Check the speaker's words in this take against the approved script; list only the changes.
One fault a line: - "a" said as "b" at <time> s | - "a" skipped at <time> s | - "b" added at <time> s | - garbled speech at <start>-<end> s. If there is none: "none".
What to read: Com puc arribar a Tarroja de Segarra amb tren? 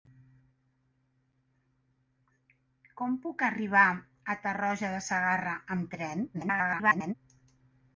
- garbled speech at 6.3-7.1 s